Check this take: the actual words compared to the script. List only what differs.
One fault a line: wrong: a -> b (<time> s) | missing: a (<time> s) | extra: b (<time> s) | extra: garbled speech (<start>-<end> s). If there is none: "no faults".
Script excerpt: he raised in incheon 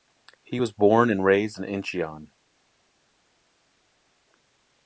extra: was born and (0.6 s)